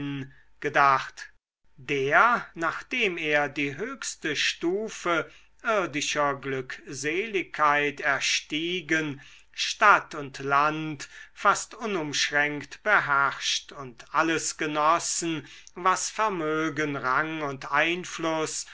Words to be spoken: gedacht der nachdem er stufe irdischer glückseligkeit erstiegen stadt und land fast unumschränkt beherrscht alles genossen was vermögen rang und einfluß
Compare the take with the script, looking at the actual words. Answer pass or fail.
fail